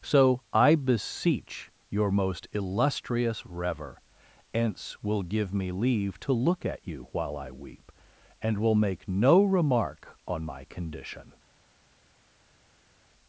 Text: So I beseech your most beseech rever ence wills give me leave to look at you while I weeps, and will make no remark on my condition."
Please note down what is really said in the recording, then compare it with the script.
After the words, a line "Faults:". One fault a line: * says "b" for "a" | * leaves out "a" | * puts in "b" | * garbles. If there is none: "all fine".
So I beseech your most illustrious rever ence will give me leave to look at you while I weep, and will make no remark on my condition."
Faults:
* says "illustrious" for "beseech"
* says "will" for "wills"
* says "weep" for "weeps"